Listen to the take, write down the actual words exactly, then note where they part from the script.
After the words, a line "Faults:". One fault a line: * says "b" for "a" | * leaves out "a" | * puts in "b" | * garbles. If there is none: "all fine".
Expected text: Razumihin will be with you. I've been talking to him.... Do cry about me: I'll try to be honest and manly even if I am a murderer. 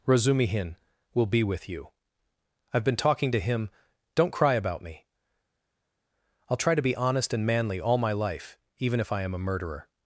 Razumihin will be with you. I've been talking to him.... Don't cry about me: I'll try to be honest and manly all my life, even if I am a murderer.
Faults:
* says "Don't" for "Do"
* puts in "all my life"